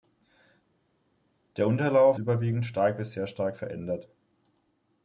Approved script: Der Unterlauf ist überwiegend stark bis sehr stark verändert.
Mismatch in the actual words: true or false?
true